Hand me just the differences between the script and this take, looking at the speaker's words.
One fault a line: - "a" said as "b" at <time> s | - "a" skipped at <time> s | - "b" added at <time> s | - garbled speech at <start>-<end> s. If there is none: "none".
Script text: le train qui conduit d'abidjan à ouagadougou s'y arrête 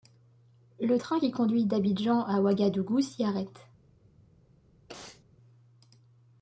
none